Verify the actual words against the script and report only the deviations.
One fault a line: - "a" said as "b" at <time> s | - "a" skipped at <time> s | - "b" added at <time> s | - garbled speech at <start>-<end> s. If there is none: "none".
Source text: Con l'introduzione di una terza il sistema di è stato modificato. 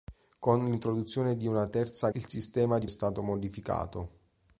none